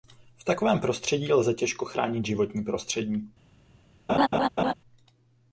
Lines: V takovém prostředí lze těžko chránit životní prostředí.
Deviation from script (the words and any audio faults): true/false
true